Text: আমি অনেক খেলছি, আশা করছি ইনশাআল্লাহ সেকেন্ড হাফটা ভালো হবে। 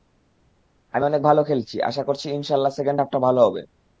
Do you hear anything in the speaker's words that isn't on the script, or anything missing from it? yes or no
yes